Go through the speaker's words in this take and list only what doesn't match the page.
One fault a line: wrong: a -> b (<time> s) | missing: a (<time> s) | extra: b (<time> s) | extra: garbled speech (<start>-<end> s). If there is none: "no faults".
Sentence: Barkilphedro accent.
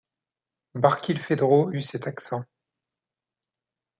extra: eut cet (1.7 s)